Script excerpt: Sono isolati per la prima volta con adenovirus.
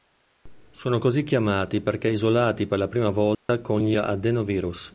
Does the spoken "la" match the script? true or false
true